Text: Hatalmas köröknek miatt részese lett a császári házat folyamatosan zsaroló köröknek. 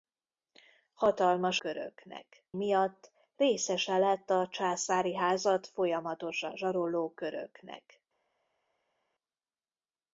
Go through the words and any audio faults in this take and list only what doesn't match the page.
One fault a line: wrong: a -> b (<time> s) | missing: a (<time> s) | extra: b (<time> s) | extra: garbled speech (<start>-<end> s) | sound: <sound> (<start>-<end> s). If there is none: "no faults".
no faults